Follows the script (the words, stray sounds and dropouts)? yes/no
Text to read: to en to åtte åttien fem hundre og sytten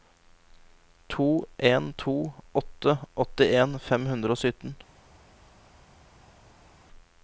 yes